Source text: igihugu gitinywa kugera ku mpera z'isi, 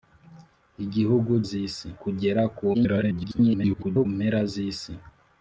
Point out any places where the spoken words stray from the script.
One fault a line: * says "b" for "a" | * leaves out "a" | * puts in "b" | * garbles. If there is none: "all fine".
* says "z'isi" for "gitinywa"
* garbles